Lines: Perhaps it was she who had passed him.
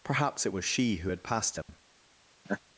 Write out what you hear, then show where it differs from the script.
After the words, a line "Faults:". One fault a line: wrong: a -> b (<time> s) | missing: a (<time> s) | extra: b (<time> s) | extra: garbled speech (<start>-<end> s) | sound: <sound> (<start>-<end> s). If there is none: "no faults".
Perhaps it was she who had passed him.
Faults:
sound: dropout (1.6-1.7 s)
sound: laugh (2.4-2.6 s)